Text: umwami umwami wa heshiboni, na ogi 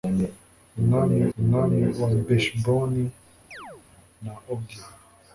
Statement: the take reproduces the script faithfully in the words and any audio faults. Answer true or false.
false